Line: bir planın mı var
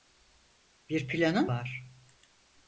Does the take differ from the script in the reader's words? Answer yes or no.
yes